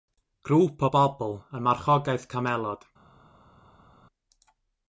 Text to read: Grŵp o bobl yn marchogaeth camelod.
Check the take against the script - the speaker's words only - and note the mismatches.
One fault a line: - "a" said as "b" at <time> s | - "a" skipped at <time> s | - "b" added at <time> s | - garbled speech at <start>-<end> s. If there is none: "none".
none